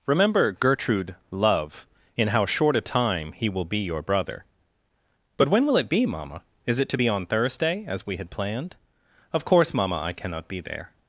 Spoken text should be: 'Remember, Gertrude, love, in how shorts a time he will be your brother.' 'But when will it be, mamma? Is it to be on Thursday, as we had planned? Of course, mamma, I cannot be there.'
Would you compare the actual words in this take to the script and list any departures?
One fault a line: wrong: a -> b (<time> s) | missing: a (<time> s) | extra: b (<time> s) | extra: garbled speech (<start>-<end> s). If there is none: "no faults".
wrong: shorts -> short (2.5 s)